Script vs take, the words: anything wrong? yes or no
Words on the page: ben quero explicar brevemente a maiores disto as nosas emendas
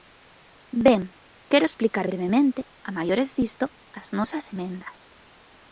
no